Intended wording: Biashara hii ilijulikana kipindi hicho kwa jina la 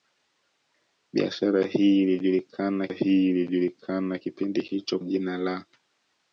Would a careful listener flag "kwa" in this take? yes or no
yes